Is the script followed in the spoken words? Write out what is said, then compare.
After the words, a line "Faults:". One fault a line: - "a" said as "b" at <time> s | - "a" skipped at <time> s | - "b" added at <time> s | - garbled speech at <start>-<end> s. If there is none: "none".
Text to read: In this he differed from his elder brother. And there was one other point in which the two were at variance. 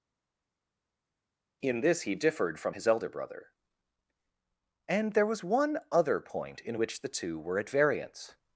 In this he differed from his elder brother. And there was one other point in which the two were at variance.
Faults:
none